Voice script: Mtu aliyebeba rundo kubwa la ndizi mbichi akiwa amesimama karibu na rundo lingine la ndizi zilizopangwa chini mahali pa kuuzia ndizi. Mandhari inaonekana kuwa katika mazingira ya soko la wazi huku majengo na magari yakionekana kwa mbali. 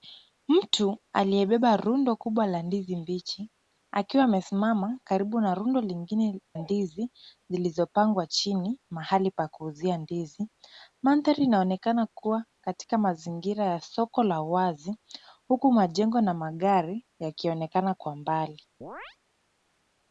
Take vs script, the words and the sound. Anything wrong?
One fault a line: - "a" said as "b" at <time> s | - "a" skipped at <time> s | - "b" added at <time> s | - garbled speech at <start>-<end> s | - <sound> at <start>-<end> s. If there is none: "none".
- "la" skipped at 6.4 s
- chirp at 18.8-19.2 s